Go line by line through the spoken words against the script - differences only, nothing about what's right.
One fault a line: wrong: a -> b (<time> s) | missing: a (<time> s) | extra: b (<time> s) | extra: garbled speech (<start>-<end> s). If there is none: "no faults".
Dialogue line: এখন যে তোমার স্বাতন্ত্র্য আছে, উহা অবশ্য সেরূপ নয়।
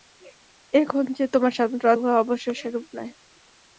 missing: আছে (1.9 s)